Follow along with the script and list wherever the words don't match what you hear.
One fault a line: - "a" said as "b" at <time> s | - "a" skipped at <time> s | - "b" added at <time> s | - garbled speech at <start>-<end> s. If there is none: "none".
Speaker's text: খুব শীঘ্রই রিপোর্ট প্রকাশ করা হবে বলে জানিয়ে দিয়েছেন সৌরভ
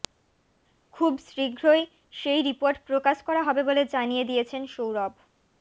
- "সেই" added at 2.1 s